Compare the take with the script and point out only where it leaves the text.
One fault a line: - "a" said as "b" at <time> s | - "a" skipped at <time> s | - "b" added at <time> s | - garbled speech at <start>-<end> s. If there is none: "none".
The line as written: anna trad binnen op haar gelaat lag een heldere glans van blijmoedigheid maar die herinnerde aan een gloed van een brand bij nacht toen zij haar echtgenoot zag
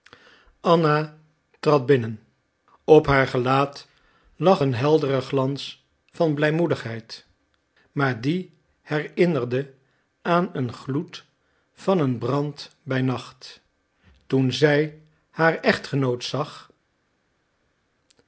none